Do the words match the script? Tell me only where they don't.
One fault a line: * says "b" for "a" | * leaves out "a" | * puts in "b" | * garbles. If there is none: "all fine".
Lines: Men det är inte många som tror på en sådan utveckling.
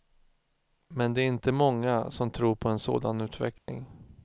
all fine